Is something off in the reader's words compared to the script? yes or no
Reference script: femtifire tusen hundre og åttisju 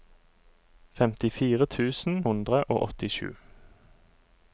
no